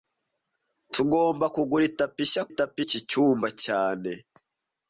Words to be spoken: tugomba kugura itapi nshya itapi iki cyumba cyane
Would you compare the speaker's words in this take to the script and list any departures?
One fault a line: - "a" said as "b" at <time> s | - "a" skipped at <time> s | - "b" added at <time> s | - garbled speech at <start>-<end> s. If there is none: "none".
none